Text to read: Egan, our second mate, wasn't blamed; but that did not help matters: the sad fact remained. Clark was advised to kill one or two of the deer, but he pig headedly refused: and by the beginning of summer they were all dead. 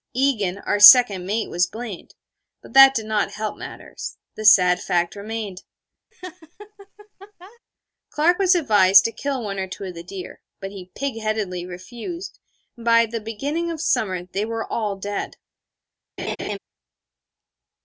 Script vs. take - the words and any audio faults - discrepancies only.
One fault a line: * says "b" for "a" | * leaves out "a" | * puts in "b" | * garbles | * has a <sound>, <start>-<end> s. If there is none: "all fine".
* says "was" for "wasn't"
* has a laugh, 6.1-7.6 s
* has a laugh, 16.2-16.6 s